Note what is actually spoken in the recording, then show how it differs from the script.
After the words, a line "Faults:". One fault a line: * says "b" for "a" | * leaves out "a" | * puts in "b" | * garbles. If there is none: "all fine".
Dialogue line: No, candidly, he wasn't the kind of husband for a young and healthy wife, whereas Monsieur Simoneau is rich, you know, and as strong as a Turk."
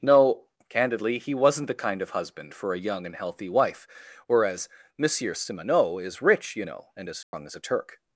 No, candidly, he wasn't the kind of husband for a young and healthy wife, whereas Monsieur Simoneau is rich, you know, and as strong as a Turk."
Faults:
all fine